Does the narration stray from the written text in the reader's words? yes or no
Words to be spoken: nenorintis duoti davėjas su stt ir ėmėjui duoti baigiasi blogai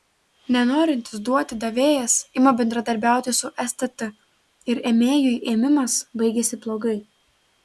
yes